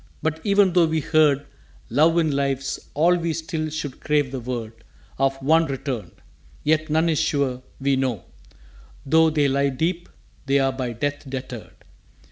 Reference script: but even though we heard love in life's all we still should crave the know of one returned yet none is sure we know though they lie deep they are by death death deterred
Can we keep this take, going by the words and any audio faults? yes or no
no